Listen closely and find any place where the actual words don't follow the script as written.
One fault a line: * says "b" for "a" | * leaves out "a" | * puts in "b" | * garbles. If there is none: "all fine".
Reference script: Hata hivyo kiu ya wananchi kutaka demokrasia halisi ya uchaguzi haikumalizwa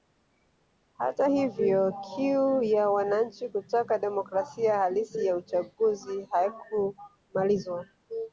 all fine